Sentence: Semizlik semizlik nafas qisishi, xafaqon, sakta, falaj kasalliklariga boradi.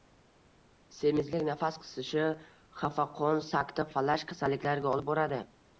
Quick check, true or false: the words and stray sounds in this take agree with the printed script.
false